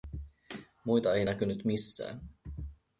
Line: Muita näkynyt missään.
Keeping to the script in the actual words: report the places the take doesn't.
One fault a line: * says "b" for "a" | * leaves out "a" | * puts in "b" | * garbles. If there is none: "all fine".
* puts in "ei"